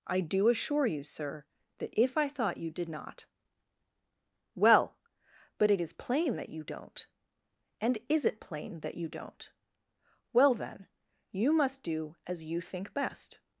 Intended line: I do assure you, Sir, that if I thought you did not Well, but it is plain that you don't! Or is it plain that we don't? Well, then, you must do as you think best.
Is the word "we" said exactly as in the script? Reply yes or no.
no